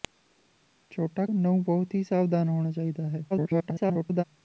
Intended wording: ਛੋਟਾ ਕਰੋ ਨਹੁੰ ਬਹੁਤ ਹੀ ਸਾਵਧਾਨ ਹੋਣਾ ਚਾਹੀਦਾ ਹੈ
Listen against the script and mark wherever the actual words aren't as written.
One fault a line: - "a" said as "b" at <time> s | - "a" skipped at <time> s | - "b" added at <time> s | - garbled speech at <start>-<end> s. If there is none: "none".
- "ਕਰੋ" skipped at 1.2 s
- garbled speech at 3.3-4.2 s